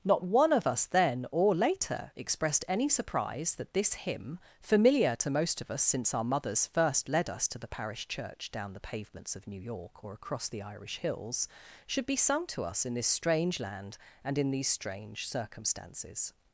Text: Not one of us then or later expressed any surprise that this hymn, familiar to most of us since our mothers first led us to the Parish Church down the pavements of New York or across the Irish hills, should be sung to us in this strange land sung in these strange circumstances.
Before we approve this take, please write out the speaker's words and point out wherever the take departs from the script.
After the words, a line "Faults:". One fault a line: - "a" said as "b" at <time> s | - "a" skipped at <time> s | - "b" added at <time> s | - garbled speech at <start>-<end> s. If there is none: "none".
Not one of us then or later expressed any surprise that this hymn, familiar to most of us since our mothers first led us to the Parish Church down the pavements of New York or across the Irish hills, should be sung to us in this strange land and in these strange circumstances.
Faults:
- "sung" said as "and" at 14.2 s